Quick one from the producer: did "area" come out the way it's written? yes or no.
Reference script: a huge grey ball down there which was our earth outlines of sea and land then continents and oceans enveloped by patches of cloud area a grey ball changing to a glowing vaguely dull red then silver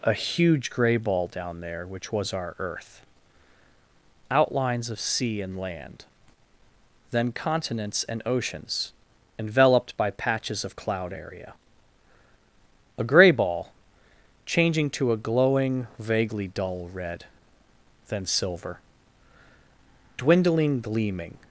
yes